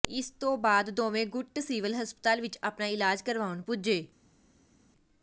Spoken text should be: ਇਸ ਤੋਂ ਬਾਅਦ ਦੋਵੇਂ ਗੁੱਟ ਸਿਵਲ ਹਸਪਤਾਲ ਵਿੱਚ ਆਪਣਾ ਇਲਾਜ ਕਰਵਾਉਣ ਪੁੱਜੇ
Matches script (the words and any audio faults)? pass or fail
pass